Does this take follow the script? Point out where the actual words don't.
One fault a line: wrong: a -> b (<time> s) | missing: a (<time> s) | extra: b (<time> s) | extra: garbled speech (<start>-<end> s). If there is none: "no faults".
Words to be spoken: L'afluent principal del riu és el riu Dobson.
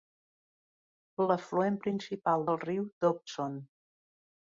missing: del riu és (2.5 s)